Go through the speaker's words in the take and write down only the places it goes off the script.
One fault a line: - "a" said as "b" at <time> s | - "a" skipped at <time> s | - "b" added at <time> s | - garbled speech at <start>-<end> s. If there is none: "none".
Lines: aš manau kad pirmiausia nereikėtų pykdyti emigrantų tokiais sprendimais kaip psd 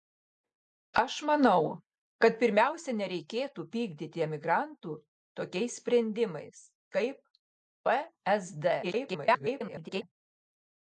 - garbled speech at 8.8-10.0 s